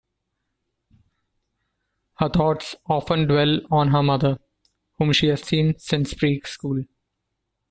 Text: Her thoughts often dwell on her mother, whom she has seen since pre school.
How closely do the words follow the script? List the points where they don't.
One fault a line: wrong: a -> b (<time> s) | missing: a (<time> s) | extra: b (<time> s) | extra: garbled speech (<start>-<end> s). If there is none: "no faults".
no faults